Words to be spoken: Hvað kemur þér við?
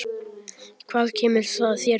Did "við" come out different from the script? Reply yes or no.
no